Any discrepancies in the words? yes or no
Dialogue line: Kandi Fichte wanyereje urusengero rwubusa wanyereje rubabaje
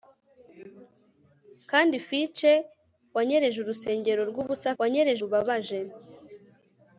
no